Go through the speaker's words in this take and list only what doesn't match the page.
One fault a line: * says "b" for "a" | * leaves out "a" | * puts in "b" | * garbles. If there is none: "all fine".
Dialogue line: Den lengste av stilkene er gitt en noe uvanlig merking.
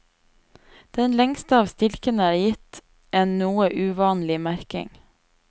all fine